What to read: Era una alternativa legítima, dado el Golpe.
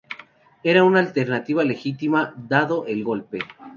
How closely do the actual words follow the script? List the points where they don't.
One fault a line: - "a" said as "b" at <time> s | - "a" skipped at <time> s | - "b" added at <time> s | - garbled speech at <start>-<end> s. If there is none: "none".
none